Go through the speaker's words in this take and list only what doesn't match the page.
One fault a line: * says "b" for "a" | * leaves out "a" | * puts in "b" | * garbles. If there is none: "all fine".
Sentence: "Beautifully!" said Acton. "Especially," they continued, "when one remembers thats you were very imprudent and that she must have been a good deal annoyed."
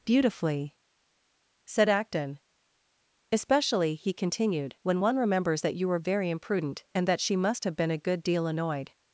* says "he" for "they"
* says "that" for "thats"